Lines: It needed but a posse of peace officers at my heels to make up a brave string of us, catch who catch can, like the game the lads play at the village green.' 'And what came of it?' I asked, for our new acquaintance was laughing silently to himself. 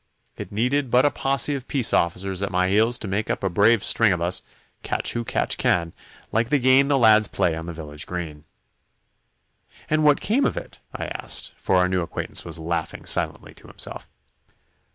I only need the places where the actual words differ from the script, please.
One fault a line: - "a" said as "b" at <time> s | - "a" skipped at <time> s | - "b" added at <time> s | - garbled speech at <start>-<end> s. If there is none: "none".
- "at" said as "on" at 7.5 s